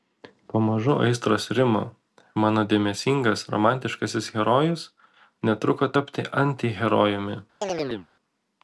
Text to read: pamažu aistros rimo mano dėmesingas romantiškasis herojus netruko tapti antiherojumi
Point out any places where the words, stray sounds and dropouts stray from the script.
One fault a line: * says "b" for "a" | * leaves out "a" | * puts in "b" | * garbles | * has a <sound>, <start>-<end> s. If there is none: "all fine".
* has a chirp, 7.6-8.1 s